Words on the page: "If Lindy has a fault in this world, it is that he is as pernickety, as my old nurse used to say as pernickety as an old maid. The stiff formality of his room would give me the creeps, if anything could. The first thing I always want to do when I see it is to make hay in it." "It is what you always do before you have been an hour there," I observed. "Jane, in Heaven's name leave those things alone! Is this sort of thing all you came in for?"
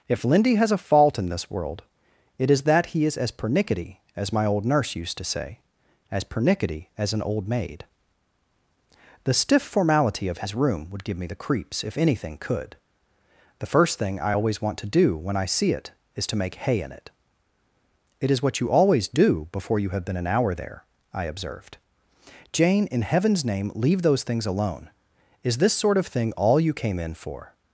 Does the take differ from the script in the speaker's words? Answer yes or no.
no